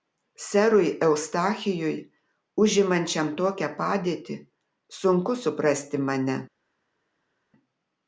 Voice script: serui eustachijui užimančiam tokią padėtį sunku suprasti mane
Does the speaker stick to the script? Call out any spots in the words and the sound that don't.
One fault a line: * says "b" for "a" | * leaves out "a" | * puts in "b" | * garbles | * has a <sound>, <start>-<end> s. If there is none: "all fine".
all fine